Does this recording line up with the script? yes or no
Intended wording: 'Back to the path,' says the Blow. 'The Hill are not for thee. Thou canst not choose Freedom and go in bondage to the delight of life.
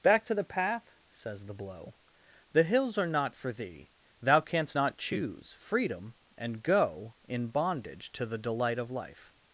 no